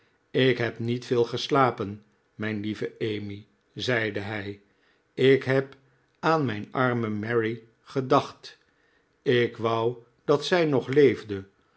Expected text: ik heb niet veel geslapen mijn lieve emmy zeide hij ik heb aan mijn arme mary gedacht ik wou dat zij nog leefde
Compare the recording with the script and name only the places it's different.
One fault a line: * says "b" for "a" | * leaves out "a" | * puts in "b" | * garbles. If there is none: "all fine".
all fine